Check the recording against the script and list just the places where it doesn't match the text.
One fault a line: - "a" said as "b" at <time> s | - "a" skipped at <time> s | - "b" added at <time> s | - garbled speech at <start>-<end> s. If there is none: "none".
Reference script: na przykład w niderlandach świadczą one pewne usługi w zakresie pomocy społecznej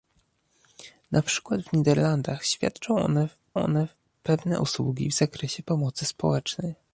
- "one" added at 3.5 s